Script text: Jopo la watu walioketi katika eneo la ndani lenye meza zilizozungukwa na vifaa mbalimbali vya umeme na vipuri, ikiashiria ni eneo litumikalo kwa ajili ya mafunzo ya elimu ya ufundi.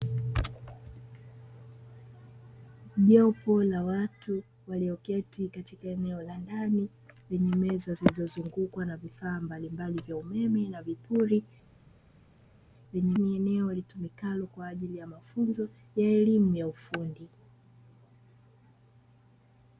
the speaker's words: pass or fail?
fail